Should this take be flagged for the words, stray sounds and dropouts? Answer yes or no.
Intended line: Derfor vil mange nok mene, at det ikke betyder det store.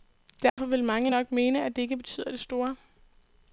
yes